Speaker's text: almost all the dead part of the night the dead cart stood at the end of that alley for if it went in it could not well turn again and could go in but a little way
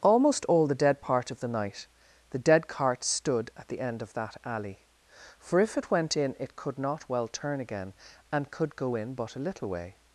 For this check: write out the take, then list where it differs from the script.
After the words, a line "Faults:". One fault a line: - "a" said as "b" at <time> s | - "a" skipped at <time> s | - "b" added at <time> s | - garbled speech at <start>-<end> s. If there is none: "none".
almost all the dead part of the night the dead cart stood at the end of that alley for if it went in it could not well turn again and could go in but a little way
Faults:
none